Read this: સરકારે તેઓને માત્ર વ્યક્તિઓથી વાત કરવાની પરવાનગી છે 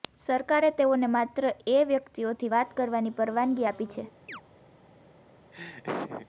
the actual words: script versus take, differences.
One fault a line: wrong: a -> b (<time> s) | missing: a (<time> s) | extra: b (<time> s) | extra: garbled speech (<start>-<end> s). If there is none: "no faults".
extra: એ (1.7 s)
extra: આપી (3.7 s)